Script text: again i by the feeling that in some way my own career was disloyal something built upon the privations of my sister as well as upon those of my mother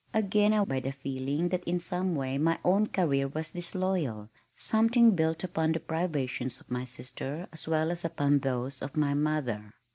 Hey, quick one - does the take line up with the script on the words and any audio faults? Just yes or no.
yes